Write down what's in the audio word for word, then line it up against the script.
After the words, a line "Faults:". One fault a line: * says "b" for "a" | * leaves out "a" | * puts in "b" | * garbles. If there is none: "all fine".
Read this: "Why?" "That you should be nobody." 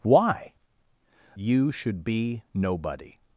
"Why?" "You should be nobody."
Faults:
* leaves out "That"